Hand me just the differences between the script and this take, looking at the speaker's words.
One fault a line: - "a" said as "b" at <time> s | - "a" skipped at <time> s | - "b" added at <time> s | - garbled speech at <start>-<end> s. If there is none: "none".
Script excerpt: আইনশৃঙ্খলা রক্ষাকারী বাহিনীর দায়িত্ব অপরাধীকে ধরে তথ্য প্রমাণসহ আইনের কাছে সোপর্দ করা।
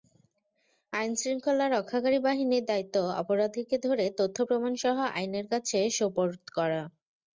none